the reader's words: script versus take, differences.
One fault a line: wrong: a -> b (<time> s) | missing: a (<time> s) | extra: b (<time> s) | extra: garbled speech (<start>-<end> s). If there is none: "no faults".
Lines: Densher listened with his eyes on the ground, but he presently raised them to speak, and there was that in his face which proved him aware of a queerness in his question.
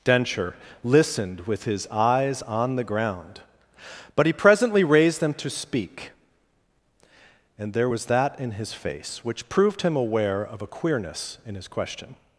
no faults